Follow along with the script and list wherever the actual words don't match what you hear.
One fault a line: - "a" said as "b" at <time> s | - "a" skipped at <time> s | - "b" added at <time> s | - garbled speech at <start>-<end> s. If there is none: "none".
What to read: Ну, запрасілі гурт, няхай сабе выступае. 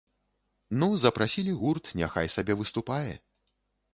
none